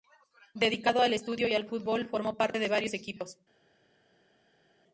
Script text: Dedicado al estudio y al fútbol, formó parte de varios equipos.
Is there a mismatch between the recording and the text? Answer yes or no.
no